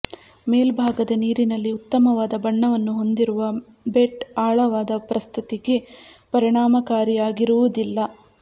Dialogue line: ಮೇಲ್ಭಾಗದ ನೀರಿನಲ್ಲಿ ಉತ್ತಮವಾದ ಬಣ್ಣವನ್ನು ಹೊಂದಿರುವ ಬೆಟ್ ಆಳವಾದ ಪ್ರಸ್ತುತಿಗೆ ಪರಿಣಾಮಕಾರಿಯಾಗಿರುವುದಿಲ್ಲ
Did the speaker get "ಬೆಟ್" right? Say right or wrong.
right